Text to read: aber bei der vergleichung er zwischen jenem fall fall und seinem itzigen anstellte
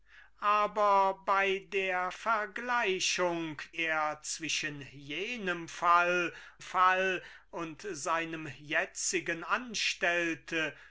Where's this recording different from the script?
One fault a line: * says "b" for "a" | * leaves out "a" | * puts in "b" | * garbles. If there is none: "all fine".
all fine